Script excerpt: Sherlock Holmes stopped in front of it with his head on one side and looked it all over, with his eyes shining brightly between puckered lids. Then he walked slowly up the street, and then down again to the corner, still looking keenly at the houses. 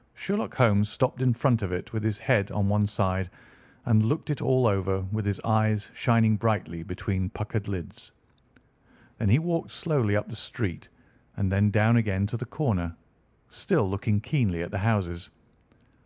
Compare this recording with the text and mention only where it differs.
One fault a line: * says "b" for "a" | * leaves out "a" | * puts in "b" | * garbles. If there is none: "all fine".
all fine